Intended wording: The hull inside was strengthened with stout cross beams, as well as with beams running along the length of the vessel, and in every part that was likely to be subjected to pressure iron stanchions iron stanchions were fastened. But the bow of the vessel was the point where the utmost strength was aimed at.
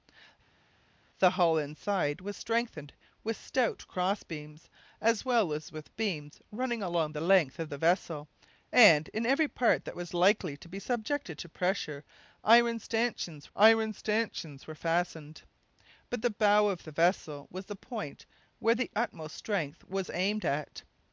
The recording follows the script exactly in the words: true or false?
true